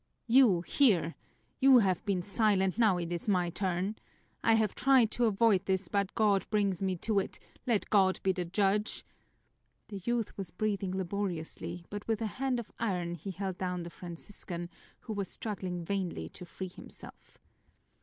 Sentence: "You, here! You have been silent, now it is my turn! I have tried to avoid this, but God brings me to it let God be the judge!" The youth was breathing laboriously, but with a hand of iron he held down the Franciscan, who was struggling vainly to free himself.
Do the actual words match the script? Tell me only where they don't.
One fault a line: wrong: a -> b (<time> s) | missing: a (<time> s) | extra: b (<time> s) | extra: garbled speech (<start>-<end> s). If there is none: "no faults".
no faults